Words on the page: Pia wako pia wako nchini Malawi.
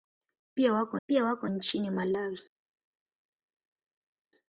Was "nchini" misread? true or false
false